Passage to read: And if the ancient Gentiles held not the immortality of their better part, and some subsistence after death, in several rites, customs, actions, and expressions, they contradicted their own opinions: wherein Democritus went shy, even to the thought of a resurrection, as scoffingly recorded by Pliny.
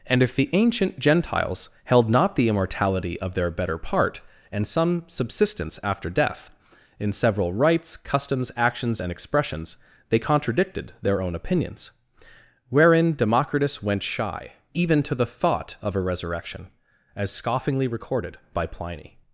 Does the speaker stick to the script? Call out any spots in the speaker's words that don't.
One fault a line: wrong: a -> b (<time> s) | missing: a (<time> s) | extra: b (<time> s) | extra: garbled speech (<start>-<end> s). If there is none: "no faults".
no faults